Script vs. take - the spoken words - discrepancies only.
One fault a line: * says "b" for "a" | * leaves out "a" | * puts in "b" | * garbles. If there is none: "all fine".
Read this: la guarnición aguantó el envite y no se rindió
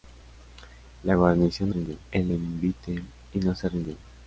* says "rindió" for "aguantó"